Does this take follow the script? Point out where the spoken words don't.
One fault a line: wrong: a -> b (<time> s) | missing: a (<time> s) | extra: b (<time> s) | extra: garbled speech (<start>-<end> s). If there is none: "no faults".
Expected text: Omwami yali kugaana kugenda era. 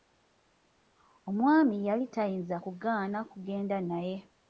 extra: tayinza (2.1 s)
wrong: era -> naye (3.9 s)